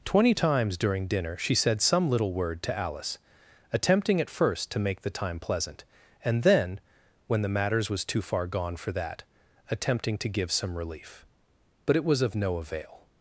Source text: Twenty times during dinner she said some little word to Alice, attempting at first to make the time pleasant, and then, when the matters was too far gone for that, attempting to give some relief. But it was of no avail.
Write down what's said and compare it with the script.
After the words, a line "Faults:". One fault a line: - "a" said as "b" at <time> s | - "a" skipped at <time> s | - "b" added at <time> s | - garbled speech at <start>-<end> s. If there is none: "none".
Twenty times during dinner she said some little word to Alice, attempting at first to make the time pleasant, and then, when the matters was too far gone for that, attempting to give some relief. But it was of no avail.
Faults:
none